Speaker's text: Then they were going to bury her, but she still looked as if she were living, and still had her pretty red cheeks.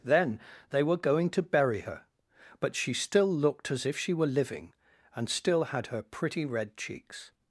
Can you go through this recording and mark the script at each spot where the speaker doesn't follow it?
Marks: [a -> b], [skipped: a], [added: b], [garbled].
Then they were going to bury her, but she still looked as if she were living, and still had her pretty red cheeks.